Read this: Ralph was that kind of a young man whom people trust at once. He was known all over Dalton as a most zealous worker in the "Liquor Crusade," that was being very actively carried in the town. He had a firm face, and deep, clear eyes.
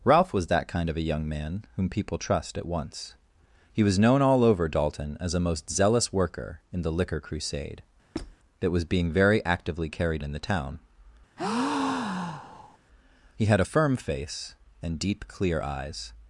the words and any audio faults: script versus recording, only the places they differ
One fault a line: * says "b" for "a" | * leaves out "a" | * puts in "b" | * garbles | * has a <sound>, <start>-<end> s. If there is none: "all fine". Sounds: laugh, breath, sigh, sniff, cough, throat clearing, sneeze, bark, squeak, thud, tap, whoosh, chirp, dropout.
* has a squeak, 8.1-8.4 s
* has a breath, 11.4-12.8 s